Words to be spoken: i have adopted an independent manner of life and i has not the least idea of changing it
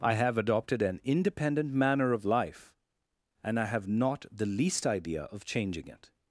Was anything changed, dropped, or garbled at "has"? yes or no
yes